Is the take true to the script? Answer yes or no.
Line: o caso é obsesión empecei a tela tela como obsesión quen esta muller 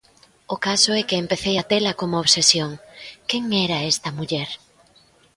no